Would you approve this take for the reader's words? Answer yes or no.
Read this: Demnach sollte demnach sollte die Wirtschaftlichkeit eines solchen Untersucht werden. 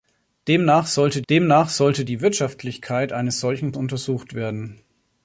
yes